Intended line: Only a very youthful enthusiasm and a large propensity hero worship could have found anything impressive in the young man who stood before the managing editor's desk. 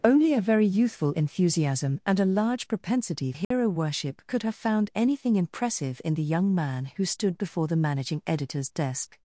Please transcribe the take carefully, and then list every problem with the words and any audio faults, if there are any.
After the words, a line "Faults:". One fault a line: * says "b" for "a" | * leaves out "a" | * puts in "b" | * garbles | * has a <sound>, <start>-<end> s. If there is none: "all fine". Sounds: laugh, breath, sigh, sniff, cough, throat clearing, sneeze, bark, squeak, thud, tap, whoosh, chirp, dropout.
Only a very youthful enthusiasm and a large propensity hero worship could have found anything impressive in the young man who stood before the managing editor's desk.
Faults:
* has a dropout, 3.4-3.5 s